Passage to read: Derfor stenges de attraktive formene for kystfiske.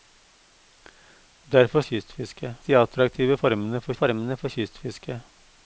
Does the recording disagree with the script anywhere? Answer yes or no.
yes